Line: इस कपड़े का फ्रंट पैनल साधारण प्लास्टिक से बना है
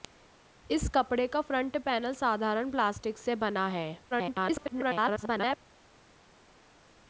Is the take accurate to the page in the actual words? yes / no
no